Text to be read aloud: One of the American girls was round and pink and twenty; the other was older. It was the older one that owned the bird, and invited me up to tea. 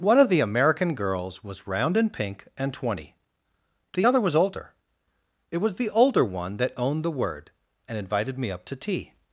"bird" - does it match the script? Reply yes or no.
no